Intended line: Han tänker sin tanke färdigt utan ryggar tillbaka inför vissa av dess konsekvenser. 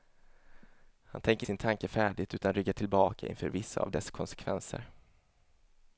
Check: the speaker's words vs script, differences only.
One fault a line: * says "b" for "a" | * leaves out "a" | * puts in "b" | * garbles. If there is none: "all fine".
all fine